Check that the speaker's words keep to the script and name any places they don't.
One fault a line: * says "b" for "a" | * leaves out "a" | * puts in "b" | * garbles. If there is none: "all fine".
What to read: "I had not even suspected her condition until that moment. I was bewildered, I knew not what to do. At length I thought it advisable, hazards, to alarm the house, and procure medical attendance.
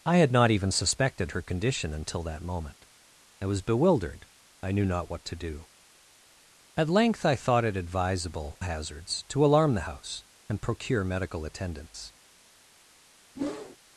all fine